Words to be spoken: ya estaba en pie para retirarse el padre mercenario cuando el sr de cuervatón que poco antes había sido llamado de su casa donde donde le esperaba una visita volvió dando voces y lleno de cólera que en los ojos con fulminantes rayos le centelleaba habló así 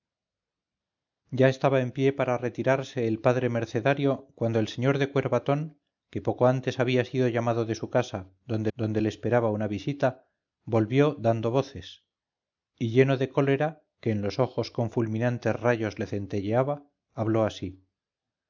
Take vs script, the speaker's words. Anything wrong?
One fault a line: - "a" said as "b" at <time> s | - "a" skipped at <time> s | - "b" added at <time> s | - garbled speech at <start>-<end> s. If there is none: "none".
none